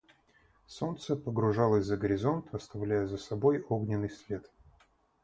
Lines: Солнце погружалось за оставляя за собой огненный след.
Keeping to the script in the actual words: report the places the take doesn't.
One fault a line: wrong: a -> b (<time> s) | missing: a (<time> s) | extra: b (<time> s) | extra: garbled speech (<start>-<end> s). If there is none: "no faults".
extra: горизонт (2.0 s)